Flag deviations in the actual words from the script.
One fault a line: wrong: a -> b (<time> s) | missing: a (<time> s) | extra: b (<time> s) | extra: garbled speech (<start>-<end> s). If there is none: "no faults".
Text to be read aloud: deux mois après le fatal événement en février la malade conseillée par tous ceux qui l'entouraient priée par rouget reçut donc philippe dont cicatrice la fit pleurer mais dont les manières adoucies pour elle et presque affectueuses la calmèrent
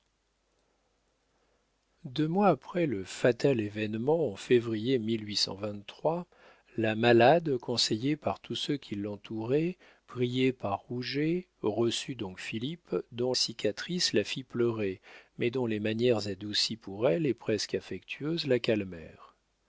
no faults